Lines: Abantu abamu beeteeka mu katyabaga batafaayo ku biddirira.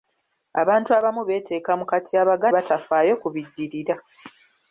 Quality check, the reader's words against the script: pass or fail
pass